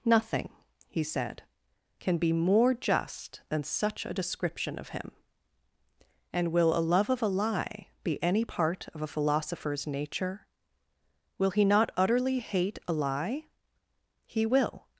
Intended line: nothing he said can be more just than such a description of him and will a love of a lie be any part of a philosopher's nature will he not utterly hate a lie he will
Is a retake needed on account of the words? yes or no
no